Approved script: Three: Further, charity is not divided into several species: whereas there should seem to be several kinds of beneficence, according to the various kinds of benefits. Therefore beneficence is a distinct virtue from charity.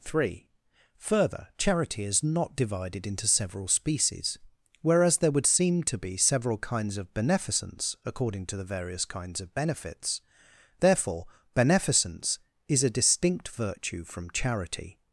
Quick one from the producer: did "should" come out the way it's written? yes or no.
no